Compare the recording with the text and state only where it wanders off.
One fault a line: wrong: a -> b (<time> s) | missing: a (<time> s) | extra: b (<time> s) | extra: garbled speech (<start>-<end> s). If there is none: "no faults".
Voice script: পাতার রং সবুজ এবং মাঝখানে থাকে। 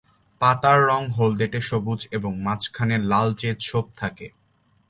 extra: হলদেটে (1.1 s)
extra: লালচে ছোপ (3.0 s)